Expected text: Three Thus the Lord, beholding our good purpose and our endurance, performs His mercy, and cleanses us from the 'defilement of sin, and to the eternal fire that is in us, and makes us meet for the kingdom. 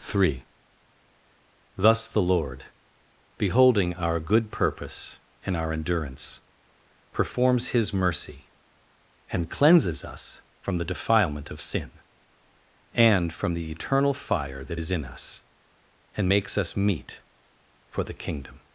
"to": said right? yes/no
no